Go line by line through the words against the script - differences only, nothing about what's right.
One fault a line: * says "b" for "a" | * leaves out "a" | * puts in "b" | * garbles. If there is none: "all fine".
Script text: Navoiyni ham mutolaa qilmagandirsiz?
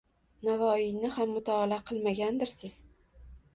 all fine